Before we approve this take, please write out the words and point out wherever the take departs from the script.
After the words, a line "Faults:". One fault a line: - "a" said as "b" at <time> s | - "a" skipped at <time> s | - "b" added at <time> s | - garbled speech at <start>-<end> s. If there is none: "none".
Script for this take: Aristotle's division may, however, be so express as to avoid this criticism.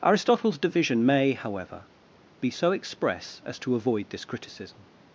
Aristotle's division may, however, be so express as to avoid this criticism.
Faults:
none